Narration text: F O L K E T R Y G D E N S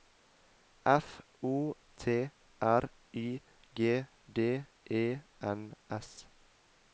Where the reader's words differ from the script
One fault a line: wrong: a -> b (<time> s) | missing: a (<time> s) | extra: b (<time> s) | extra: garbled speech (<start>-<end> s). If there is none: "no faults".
missing: L K E (1.8 s)